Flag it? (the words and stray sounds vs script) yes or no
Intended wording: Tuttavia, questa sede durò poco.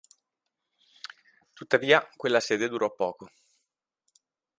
yes